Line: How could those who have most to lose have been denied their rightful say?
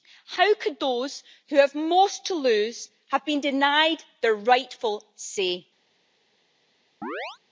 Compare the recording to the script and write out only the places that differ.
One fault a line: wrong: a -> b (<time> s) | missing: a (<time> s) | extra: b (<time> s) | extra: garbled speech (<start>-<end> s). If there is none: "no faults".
no faults